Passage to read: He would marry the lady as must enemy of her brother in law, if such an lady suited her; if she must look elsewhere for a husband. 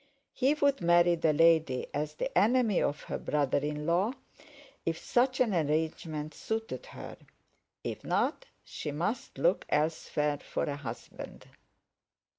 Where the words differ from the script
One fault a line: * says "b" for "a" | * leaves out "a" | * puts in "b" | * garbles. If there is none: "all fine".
* says "the" for "must"
* says "arrangement" for "lady"
* puts in "not"